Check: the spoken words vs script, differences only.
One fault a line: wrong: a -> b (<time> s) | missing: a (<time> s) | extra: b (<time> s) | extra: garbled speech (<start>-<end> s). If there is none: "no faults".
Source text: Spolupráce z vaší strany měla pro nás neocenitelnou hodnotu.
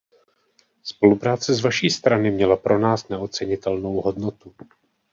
no faults